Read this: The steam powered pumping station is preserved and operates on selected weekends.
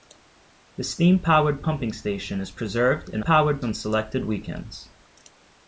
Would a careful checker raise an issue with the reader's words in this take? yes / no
yes